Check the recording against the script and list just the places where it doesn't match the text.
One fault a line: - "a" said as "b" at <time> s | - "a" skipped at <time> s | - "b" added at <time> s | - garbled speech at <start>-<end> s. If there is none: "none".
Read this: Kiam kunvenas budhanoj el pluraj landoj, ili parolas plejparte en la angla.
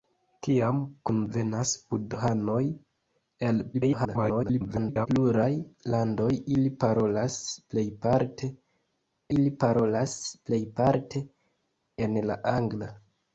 - garbled speech at 3.7-5.1 s
- "ili parolas plejparte" added at 9.4 s